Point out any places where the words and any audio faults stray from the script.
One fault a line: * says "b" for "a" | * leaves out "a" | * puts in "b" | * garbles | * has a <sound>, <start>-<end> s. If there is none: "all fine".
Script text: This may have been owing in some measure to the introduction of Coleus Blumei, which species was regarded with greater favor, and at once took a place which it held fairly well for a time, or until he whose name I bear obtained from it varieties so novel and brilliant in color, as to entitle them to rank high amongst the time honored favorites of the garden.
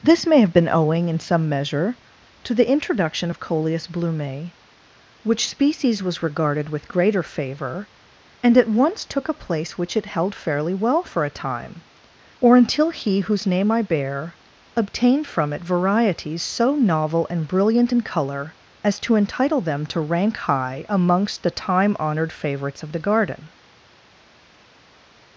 all fine